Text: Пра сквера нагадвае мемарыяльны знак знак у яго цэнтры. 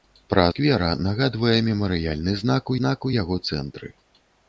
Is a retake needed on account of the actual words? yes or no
no